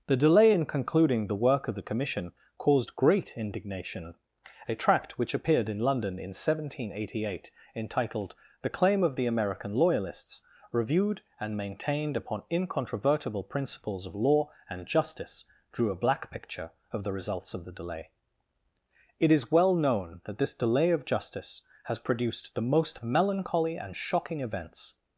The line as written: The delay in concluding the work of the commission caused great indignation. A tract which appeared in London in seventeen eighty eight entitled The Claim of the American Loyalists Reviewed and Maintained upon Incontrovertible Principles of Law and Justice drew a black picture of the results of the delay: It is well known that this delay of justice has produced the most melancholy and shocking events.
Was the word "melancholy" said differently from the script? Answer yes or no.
no